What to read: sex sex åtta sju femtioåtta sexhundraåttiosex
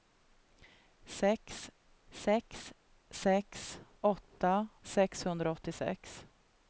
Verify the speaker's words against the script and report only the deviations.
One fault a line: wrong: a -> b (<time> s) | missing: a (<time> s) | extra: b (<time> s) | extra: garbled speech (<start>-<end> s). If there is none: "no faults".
extra: sex (3.1 s)
missing: sju femtioåtta (4.7 s)